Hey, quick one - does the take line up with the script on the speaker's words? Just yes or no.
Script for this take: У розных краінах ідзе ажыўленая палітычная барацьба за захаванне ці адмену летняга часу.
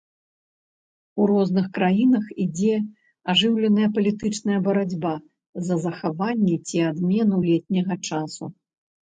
yes